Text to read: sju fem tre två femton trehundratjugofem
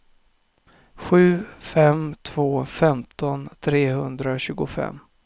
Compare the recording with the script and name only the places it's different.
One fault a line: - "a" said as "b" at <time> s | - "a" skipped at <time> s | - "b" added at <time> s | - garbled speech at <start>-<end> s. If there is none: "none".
- "tre" skipped at 2.1 s